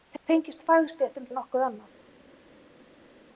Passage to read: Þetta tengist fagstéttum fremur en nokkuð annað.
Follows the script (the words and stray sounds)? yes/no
no